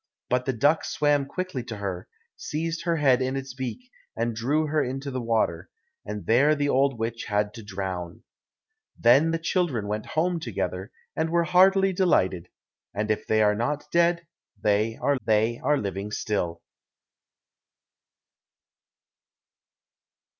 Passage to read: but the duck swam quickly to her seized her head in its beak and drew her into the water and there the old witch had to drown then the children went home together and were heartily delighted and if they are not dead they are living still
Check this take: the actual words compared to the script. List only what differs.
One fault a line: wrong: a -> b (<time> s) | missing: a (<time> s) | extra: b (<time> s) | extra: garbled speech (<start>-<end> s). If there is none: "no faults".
extra: they are (15.3 s)